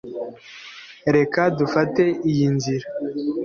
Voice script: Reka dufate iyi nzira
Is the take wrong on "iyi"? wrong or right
right